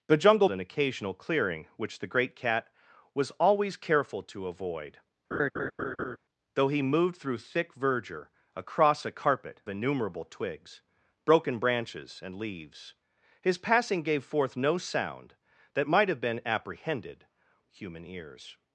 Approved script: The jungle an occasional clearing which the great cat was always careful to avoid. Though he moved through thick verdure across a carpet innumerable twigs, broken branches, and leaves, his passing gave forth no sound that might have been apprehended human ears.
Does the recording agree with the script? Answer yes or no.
yes